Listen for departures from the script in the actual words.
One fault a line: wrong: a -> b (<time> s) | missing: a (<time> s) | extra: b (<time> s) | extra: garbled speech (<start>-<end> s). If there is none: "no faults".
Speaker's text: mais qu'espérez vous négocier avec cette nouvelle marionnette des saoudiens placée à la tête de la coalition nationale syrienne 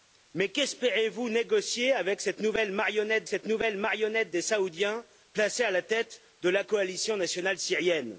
extra: cette nouvelle marionnette (3.3 s)